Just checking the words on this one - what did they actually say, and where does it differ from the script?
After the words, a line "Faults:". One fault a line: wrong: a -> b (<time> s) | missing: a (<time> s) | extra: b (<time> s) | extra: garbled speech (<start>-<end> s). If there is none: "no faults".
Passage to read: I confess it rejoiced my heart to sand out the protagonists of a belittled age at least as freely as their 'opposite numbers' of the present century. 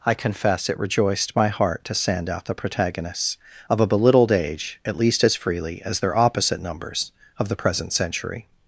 I confess it rejoiced my heart to sand out the protagonists of a belittled age at least as freely as their 'opposite numbers' of the present century.
Faults:
no faults